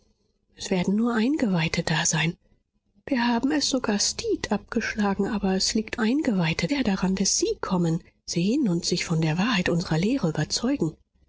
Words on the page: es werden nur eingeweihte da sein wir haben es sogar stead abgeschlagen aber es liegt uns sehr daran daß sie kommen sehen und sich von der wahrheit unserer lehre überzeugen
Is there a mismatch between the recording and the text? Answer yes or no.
yes